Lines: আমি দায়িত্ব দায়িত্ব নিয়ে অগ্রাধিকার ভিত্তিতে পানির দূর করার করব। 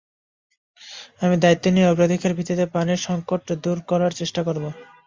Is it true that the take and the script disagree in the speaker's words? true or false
true